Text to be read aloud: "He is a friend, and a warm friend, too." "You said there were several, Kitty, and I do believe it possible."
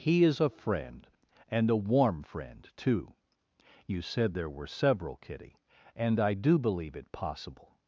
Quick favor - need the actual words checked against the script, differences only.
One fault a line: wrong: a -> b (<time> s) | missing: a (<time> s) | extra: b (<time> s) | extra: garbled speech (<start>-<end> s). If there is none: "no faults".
no faults